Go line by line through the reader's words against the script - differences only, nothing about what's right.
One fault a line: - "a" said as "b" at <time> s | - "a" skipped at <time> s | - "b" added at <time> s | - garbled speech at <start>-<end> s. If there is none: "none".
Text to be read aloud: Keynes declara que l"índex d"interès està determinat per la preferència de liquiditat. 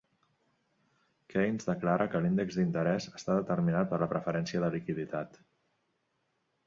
none